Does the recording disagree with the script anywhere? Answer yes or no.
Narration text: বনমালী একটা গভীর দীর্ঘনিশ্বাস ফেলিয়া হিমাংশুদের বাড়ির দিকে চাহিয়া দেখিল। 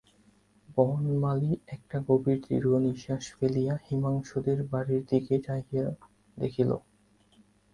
no